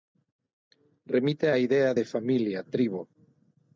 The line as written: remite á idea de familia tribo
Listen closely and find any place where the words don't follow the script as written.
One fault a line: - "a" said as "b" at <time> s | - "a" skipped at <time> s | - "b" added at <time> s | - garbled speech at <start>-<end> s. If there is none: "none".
none